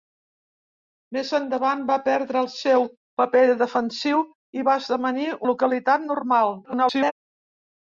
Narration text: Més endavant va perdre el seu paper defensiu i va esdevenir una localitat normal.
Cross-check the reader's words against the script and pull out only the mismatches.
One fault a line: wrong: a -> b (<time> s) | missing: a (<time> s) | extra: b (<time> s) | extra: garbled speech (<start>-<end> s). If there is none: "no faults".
missing: una (5.3 s)
extra: garbled speech (6.6-7.1 s)